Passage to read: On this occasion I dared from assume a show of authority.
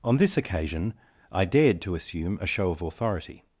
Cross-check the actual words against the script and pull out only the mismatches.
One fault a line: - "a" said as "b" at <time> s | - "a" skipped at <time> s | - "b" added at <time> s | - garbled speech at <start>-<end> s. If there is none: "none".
- "from" said as "to" at 1.8 s